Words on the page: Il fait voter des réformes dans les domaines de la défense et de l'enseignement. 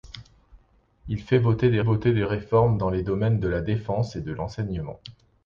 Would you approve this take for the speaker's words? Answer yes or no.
no